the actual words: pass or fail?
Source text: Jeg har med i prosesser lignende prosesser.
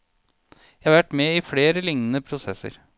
fail